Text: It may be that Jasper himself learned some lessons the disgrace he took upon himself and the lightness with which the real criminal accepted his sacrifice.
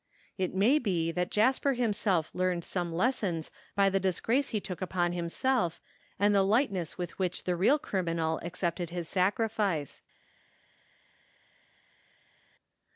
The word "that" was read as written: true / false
true